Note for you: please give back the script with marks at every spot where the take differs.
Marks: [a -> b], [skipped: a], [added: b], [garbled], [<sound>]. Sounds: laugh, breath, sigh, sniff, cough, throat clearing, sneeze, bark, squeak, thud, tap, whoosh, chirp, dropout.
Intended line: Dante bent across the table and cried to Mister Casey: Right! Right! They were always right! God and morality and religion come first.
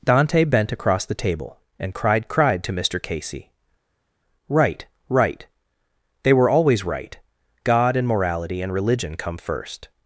Dante bent across the table and cried [added: cried] to Mister Casey: Right! Right! They were always right! God and morality and religion come first.